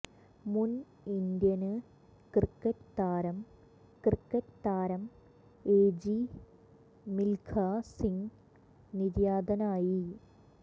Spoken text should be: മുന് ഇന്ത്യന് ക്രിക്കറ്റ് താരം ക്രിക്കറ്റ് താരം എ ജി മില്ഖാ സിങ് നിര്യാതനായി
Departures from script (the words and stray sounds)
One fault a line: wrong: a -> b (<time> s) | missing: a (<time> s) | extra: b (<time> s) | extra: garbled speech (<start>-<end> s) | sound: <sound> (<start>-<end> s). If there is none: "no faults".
no faults